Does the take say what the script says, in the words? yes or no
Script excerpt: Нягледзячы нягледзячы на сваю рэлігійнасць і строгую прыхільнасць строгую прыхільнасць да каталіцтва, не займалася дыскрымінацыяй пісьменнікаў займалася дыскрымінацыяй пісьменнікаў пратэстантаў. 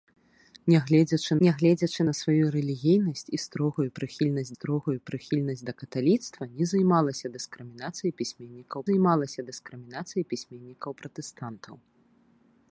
yes